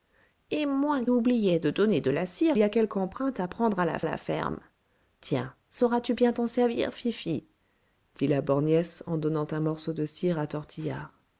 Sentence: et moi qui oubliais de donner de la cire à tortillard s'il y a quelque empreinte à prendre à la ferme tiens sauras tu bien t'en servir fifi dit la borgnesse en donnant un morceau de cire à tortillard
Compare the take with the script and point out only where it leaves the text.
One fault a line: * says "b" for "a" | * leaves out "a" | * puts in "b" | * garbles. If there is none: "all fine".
* leaves out "qui"
* leaves out "à tortillard s'il"
* puts in "la"